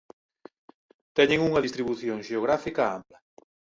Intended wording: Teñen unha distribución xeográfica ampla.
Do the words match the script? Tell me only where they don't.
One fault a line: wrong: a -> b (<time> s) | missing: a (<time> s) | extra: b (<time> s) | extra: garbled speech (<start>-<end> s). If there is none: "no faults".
no faults